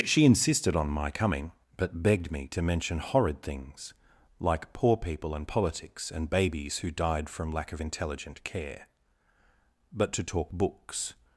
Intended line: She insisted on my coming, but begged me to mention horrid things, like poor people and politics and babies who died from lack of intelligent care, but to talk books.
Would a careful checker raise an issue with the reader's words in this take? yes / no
no